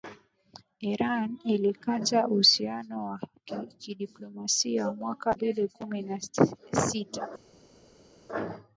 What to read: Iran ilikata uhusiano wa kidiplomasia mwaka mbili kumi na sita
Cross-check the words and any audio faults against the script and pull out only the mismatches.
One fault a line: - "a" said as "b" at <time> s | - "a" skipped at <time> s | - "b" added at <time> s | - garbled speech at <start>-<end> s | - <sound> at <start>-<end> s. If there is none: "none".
none